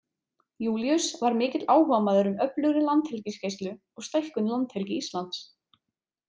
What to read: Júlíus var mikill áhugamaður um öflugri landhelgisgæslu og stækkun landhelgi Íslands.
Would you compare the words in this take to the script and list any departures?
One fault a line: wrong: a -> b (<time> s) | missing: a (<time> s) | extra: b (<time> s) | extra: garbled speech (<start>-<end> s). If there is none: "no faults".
no faults